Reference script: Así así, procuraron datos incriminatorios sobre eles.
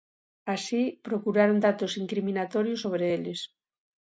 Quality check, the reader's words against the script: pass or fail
fail